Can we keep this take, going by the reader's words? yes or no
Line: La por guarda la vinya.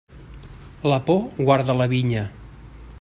yes